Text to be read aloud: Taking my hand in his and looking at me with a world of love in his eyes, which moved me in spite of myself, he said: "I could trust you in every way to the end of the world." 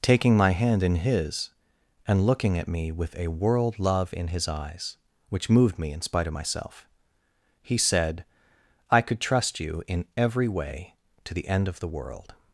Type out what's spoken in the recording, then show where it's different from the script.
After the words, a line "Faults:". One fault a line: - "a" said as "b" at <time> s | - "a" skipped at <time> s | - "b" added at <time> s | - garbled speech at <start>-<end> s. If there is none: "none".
Taking my hand in his and looking at me with a world love in his eyes, which moved me in spite of myself, he said: "I could trust you in every way to the end of the world."
Faults:
- "of" skipped at 3.8 s